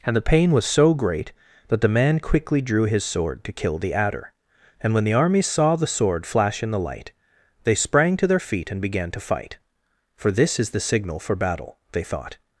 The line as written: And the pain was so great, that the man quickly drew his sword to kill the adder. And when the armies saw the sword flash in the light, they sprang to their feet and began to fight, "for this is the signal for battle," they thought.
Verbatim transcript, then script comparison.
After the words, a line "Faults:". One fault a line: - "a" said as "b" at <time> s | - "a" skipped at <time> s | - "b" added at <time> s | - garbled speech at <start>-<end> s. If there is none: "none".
And the pain was so great, that the man quickly drew his sword to kill the adder. And when the armies saw the sword flash in the light, they sprang to their feet and began to fight, "for this is the signal for battle," they thought.
Faults:
none